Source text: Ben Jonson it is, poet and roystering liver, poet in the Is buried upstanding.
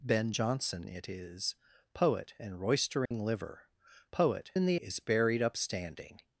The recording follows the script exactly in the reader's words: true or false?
true